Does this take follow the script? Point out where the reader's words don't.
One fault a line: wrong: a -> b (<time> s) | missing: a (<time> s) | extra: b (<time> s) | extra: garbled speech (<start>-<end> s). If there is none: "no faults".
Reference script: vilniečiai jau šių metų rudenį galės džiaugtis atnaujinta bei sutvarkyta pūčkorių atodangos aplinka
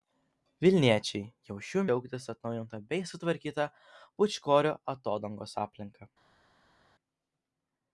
missing: metų rudenį galės (1.8 s)